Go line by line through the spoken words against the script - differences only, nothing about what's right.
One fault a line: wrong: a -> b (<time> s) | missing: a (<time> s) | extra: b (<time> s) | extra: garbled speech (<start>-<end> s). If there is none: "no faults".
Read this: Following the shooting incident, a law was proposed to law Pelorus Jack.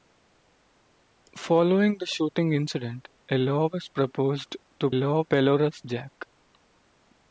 no faults